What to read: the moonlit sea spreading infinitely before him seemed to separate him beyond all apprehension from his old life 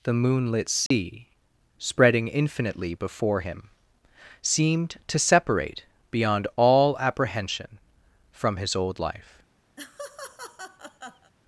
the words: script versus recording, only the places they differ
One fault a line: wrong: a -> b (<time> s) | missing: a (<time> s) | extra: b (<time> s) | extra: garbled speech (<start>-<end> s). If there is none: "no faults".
missing: him (5.8 s)